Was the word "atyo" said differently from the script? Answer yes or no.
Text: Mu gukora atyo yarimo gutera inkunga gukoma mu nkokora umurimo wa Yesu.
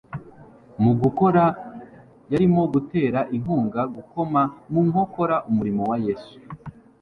yes